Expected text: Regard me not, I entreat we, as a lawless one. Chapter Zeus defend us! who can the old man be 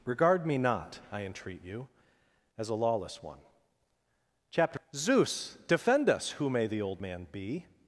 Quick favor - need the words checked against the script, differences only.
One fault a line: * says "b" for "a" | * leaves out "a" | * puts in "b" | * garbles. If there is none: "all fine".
* says "you" for "we"
* says "may" for "can"